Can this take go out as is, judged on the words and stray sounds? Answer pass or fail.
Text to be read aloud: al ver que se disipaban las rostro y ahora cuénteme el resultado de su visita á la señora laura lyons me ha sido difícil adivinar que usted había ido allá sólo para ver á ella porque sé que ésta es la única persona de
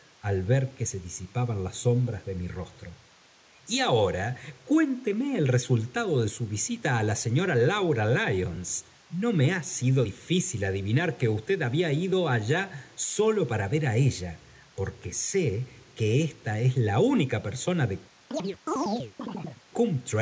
fail